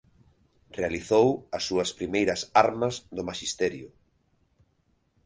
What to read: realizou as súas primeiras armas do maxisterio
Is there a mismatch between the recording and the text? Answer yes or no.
no